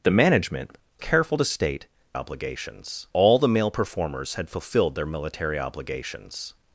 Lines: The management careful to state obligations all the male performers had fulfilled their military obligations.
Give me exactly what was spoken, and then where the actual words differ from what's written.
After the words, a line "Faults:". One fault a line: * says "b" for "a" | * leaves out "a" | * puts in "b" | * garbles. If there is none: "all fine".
The management careful to state obligations all the male performers had fulfilled their military obligations.
Faults:
all fine